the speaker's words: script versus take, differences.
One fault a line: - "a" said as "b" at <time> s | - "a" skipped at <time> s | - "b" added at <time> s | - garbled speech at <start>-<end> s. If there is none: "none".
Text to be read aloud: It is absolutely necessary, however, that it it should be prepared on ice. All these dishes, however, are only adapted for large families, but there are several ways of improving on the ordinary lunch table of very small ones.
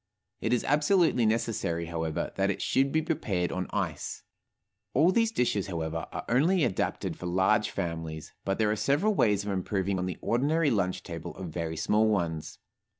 - "it" skipped at 2.6 s